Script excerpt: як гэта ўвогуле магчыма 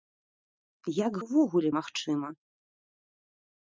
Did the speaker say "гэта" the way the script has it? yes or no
no